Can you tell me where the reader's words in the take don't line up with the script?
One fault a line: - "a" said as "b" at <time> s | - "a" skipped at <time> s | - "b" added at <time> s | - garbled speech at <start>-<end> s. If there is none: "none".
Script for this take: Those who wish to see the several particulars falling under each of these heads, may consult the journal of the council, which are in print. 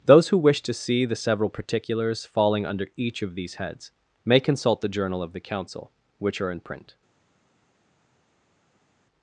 none